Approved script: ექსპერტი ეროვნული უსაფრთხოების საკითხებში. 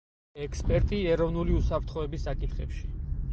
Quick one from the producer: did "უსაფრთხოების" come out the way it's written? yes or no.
yes